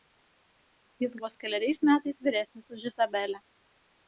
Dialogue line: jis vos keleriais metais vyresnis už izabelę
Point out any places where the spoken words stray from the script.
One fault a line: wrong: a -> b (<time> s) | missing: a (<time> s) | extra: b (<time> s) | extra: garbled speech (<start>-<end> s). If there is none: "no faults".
no faults